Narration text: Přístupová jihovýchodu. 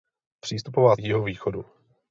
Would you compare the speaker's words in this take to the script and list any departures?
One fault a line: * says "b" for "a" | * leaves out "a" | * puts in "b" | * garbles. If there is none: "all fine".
all fine